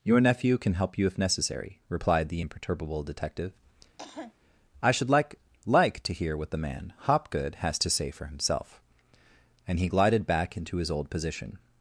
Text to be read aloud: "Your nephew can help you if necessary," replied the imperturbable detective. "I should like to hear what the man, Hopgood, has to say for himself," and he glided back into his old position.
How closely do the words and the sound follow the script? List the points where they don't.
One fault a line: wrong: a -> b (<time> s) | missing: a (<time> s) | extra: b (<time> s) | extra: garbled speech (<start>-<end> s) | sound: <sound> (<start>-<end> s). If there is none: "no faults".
sound: cough (4.0-4.3 s)
extra: like (5.7 s)